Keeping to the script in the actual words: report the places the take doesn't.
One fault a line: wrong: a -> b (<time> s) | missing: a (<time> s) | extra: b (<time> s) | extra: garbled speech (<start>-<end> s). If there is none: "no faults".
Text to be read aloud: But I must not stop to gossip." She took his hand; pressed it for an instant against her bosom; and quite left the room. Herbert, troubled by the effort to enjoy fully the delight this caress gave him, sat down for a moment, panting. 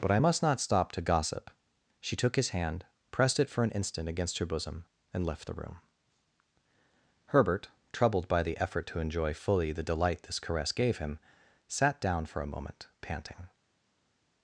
missing: quite (5.2 s)